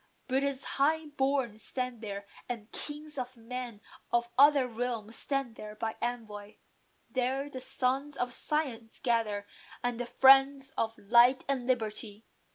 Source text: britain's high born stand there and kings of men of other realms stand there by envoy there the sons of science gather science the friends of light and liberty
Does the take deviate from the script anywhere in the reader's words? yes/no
yes